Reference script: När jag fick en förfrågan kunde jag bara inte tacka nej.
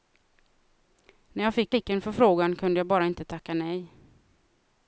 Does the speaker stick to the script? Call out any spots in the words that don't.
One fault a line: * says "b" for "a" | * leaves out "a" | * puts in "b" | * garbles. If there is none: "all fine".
* puts in "fick"